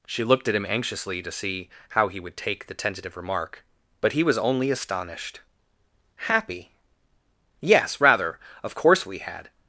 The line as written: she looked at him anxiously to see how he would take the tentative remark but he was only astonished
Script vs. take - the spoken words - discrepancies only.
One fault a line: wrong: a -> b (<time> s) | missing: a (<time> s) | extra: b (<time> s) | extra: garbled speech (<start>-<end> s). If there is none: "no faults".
extra: happy yes rather of course we had (6.2 s)